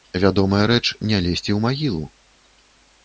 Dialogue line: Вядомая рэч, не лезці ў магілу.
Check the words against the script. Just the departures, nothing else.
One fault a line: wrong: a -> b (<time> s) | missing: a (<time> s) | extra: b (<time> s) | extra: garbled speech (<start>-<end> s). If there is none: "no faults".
no faults